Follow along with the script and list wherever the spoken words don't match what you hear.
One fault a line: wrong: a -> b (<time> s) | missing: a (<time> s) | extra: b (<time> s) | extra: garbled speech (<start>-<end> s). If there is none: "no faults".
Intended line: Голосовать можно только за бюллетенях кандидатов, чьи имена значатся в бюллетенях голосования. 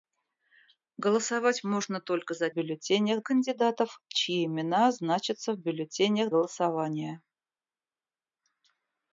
no faults